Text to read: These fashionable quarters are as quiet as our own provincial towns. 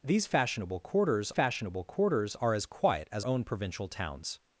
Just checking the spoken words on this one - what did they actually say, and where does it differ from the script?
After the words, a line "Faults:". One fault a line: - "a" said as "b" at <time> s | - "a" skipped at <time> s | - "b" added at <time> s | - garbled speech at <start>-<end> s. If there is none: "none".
These fashionable quarters fashionable quarters are as quiet as own provincial towns.
Faults:
- "fashionable quarters" added at 1.3 s
- "our" skipped at 3.3 s